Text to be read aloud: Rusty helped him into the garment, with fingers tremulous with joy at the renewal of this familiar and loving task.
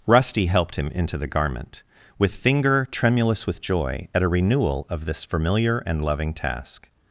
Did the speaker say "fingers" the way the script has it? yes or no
no